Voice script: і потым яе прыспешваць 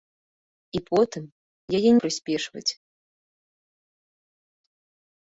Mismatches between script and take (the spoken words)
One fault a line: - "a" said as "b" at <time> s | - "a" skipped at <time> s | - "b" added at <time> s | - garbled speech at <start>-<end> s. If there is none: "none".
none